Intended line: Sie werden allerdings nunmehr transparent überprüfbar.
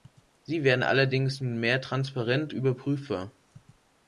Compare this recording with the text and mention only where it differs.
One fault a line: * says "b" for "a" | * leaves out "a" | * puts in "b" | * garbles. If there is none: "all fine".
all fine